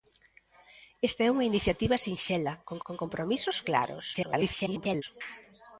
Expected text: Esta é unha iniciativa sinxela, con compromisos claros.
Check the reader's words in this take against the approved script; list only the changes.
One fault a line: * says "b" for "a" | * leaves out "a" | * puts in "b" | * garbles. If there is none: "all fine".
* puts in "con"
* garbles